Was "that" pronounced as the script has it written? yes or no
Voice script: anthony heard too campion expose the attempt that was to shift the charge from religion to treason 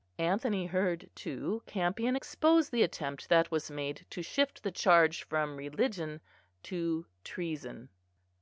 yes